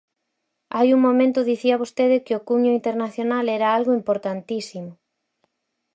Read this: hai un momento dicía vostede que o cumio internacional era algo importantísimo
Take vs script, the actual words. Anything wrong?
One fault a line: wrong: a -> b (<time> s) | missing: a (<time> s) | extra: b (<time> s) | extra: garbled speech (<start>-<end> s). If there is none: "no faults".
no faults